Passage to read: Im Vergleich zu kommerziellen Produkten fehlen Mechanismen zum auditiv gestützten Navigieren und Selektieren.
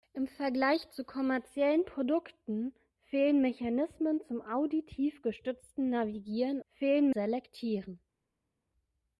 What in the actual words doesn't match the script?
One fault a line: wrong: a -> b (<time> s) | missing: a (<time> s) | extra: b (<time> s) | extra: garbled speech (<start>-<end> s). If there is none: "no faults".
wrong: und -> fehlen (6.7 s)